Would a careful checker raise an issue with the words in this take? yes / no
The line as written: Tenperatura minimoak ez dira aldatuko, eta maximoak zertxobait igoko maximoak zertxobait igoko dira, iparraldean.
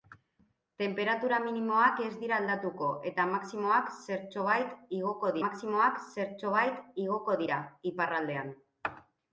no